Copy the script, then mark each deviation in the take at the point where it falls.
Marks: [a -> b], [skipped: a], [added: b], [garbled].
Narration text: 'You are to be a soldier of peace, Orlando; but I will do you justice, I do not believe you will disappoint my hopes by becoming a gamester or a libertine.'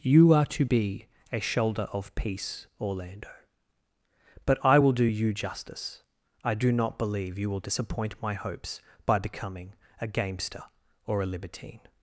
'You are to be a [soldier -> shoulder] of peace, Orlando; but I will do you justice, I do not believe you will disappoint my hopes by becoming a gamester or a libertine.'